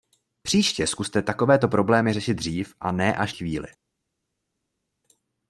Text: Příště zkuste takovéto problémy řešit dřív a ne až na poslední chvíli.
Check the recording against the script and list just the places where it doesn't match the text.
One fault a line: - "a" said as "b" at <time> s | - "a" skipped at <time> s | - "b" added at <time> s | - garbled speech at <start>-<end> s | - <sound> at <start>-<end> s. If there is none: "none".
- "na poslední" skipped at 3.4 s